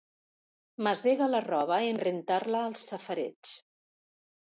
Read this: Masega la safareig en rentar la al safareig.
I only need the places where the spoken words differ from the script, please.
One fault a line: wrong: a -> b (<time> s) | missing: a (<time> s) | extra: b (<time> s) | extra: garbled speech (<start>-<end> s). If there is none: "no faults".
wrong: safareig -> roba (1.4 s)